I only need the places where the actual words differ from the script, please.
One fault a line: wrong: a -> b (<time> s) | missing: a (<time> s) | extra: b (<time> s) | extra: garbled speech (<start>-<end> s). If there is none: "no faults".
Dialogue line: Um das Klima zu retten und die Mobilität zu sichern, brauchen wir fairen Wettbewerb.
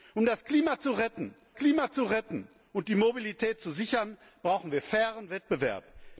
extra: Klima zu retten (1.6 s)